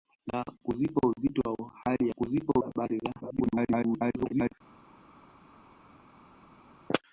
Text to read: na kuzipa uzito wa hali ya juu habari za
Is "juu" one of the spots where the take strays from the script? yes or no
yes